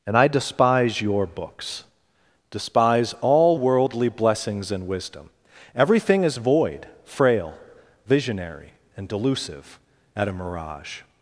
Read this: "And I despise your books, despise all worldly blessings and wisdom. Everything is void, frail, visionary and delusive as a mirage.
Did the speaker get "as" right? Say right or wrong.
wrong